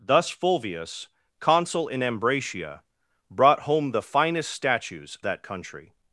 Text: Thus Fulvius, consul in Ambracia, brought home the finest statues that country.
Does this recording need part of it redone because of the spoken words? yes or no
no